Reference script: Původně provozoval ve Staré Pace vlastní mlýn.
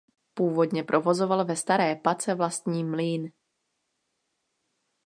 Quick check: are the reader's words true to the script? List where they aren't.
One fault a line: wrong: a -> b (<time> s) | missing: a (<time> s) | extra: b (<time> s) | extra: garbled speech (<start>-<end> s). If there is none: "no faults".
no faults